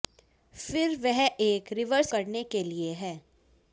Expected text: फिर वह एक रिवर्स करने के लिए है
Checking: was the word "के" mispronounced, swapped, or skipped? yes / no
no